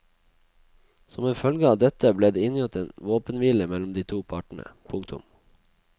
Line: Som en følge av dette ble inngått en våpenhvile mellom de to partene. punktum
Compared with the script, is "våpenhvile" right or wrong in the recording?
right